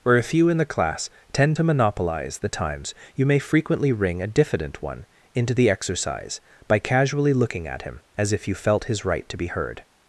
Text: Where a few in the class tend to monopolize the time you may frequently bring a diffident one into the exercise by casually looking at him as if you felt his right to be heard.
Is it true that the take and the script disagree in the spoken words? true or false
true